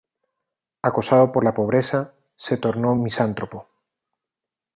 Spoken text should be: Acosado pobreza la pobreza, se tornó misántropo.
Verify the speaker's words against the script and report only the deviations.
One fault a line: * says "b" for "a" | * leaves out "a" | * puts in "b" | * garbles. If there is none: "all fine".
* says "por" for "pobreza"